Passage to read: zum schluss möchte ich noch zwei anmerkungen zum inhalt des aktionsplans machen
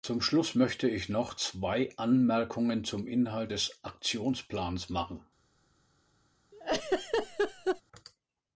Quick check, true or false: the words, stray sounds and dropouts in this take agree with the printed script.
false